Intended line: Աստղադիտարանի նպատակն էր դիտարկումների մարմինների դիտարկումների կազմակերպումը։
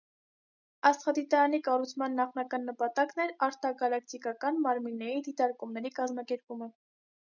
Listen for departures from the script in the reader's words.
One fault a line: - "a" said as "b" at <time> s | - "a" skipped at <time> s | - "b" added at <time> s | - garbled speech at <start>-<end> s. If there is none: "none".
- "կառուցման նախնական" added at 1.7 s
- "դիտարկումների" said as "արտագալակտիկական" at 3.5 s